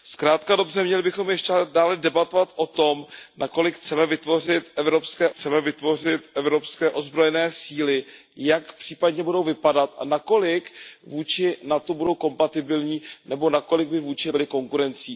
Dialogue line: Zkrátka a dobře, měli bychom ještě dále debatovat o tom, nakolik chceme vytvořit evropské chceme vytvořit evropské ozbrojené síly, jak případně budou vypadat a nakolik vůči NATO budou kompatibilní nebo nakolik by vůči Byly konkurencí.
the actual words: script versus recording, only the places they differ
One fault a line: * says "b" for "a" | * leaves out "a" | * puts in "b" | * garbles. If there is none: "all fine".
all fine